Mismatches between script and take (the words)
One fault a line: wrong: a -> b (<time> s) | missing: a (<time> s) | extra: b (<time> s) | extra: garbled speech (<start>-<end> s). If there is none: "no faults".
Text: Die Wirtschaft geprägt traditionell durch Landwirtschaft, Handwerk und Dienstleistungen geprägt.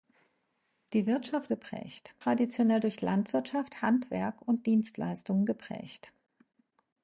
no faults